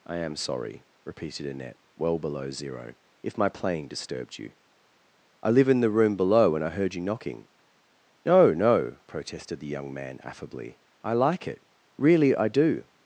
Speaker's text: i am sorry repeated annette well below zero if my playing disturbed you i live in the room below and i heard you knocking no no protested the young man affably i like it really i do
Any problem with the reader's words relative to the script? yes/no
no